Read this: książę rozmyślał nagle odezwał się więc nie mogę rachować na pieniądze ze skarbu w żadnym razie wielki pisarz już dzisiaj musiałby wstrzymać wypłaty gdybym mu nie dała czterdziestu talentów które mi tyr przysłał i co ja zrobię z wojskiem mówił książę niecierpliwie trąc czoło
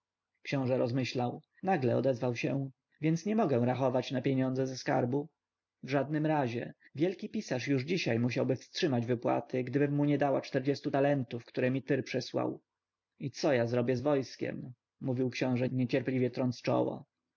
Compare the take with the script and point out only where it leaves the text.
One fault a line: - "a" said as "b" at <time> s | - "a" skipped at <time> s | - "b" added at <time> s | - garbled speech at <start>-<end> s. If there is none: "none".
none